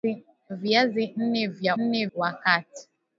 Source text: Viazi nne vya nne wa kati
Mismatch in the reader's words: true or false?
false